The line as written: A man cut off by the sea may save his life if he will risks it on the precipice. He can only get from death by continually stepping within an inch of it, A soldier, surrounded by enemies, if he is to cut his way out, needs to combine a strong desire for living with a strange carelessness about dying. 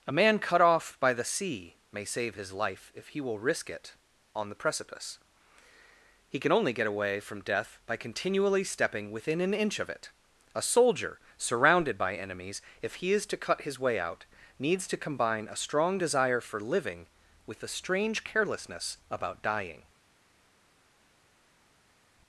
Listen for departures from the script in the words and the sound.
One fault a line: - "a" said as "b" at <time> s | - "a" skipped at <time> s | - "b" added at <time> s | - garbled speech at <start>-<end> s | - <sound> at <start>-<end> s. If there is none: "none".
- "risks" said as "risk" at 3.4 s
- "away" added at 6.9 s